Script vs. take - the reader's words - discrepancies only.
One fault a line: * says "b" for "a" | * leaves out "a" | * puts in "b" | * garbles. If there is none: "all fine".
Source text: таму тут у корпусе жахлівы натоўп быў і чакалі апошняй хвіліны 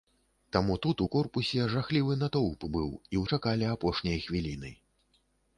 all fine